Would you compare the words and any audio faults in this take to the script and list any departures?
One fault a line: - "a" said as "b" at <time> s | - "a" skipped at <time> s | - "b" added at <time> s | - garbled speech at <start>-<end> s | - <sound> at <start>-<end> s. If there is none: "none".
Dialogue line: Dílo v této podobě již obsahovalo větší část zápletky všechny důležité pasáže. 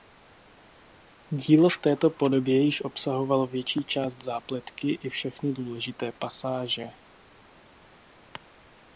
- "i" added at 4.9 s